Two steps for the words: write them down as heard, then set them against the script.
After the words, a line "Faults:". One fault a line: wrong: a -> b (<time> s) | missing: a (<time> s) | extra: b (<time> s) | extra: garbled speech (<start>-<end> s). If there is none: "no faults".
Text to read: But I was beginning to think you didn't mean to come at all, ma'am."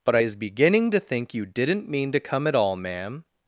But I is beginning to think you didn't mean to come at all, ma'am."
Faults:
wrong: was -> is (0.2 s)